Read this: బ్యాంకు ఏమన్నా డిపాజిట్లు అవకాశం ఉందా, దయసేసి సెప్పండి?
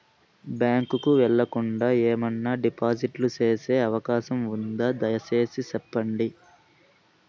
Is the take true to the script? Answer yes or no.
no